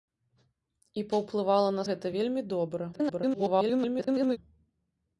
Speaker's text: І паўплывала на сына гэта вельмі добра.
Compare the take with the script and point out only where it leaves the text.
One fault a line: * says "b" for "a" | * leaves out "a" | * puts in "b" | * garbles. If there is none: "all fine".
* leaves out "сына"
* garbles